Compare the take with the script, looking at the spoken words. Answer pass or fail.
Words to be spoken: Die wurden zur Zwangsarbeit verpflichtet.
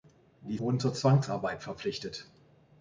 pass